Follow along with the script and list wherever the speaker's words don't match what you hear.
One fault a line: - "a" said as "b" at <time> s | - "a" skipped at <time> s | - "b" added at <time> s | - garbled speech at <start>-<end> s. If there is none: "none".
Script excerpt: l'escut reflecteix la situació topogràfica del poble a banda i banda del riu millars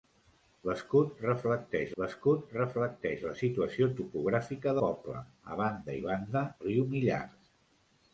- "l'escut reflecteix" added at 2.0 s
- "del" skipped at 4.7 s
- "del" skipped at 6.5 s